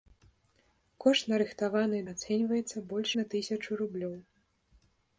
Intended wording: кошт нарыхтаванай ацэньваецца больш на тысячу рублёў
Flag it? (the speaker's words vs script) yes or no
no